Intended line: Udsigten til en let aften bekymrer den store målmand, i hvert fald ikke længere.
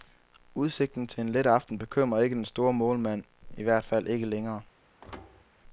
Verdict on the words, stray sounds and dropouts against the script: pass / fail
fail